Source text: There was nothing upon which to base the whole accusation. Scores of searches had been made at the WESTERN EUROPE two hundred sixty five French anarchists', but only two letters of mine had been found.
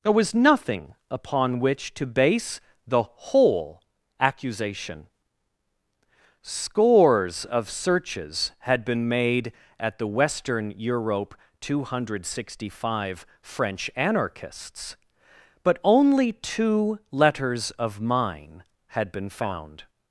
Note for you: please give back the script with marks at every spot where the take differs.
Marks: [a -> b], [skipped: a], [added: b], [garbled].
There was nothing upon which to base the whole accusation. Scores of searches had been made at the WESTERN EUROPE two hundred sixty five French anarchists', but only two letters of mine had been found.